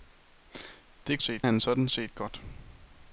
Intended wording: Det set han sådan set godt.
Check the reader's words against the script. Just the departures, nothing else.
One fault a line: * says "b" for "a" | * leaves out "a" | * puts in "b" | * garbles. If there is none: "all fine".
all fine